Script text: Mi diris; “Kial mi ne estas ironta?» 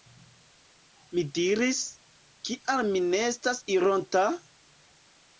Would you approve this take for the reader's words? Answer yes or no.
yes